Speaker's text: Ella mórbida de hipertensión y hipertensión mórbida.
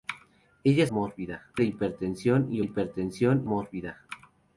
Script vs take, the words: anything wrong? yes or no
no